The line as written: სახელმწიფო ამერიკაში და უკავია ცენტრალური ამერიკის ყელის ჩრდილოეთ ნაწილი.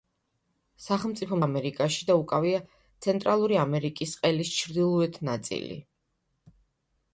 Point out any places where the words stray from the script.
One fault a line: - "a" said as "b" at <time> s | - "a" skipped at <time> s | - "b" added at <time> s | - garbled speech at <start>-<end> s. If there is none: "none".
none